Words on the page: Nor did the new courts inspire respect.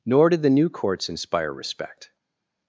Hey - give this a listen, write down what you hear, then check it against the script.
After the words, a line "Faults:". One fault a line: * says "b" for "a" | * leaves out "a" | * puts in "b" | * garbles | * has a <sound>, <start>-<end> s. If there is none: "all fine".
Nor did the new courts inspire respect.
Faults:
all fine